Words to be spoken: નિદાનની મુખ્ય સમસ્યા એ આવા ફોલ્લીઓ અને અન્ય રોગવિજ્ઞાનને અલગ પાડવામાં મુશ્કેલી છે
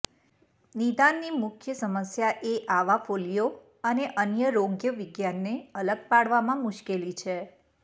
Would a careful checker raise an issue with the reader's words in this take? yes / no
no